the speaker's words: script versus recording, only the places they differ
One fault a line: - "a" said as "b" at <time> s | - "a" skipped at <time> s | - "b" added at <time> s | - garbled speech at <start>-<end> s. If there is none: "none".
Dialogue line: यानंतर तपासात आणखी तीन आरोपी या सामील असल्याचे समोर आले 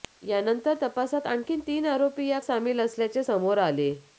none